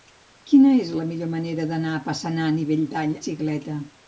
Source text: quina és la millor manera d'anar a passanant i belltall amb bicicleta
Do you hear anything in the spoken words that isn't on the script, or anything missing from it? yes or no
yes